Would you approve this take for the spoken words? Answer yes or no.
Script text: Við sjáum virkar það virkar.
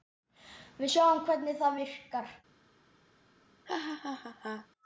no